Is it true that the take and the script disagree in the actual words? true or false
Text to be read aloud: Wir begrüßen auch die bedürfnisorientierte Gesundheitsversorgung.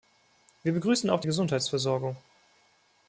true